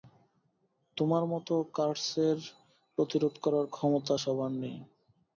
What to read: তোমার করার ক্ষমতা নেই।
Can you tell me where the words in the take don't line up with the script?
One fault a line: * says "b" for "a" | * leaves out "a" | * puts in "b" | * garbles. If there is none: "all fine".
* puts in "মতো কার্সের প্রতিরোধ"
* puts in "সবার"